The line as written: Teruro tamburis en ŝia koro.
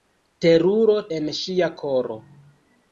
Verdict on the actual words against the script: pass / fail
fail